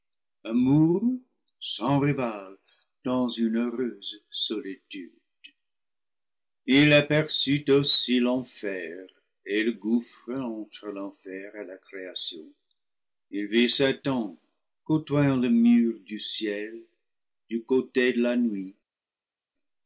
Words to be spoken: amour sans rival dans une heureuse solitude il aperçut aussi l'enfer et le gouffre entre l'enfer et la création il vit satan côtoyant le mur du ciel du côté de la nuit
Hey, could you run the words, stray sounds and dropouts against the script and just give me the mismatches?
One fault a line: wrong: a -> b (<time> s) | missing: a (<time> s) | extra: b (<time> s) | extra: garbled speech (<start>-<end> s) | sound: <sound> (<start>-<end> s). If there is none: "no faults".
no faults